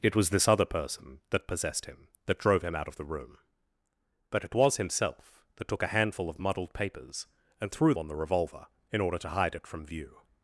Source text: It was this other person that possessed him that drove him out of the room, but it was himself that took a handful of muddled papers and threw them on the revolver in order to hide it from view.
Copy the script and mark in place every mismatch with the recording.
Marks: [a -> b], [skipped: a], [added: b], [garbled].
It was this other person that possessed him that drove him out of the room, but it was himself that took a handful of muddled papers and threw [skipped: them] on the revolver in order to hide it from view.